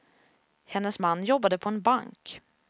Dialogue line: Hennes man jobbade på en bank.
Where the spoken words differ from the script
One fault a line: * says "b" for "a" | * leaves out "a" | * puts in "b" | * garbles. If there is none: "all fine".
all fine